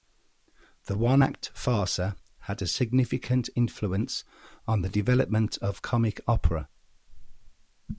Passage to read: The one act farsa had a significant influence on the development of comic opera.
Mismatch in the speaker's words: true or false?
false